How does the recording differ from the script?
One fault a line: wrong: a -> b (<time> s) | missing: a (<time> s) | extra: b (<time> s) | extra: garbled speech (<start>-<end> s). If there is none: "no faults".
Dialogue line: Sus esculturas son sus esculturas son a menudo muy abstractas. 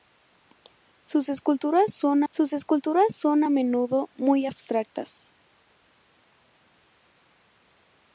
no faults